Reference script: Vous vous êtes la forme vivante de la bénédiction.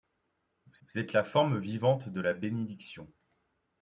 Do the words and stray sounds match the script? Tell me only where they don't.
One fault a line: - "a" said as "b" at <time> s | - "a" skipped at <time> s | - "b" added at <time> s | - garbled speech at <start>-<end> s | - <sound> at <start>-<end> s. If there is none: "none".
none